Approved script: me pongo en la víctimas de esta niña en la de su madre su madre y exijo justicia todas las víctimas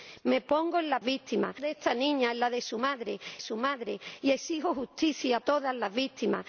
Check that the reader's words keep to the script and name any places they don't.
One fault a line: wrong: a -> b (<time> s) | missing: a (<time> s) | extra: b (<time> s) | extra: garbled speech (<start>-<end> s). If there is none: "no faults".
no faults